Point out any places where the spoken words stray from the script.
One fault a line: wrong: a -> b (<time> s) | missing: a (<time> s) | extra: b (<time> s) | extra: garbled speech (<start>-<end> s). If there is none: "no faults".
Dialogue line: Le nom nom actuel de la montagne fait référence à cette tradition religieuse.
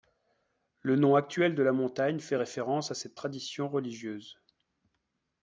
missing: nom (1.1 s)